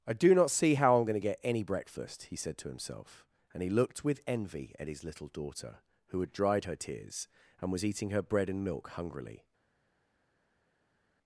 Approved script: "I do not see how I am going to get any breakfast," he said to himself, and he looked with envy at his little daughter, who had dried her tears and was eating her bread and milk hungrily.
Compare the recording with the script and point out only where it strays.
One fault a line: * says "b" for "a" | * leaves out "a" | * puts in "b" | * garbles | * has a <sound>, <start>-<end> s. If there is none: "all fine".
all fine